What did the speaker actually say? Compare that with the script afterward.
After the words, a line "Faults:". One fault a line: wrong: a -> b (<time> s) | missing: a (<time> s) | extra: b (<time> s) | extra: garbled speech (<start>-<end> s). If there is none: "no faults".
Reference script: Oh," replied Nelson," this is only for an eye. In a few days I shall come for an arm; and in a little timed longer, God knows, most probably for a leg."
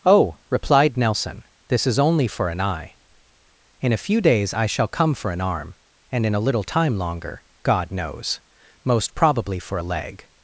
Oh," replied Nelson," this is only for an eye. In a few days I shall come for an arm; and in a little time longer, God knows, most probably for a leg."
Faults:
wrong: timed -> time (6.6 s)